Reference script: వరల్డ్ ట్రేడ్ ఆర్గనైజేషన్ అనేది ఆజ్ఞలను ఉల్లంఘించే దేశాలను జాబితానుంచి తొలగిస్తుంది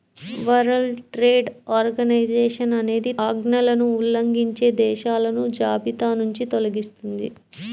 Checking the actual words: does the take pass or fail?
pass